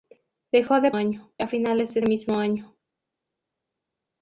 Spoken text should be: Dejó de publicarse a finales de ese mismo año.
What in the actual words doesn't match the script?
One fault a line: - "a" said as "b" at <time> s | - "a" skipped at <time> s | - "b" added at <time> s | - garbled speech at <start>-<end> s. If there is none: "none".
- "publicarse" said as "año" at 0.9 s
- "ese" skipped at 2.0 s